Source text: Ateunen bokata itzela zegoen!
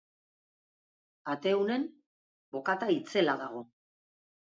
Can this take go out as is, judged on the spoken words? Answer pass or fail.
fail